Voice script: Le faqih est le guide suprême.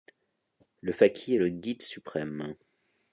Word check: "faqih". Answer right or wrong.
right